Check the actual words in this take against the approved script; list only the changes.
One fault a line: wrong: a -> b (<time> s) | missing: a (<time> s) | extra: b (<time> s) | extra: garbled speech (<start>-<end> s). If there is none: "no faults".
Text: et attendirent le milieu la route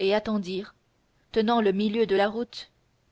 extra: tenant (1.3 s)
extra: de (2.1 s)